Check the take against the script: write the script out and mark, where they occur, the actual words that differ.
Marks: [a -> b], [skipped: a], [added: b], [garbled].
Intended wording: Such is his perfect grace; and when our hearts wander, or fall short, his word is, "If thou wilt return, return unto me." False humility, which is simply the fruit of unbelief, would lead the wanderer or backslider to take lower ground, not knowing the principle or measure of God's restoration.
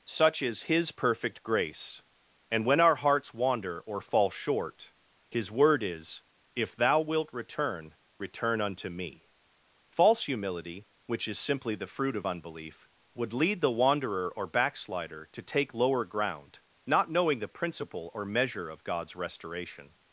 Such is his perfect grace; and when our hearts wander, or fall short, his word is, "If thou wilt return, return unto me." False humility, which is simply the fruit of unbelief, would lead the wanderer or backslider to take lower ground, not knowing the principle or measure of God's restoration.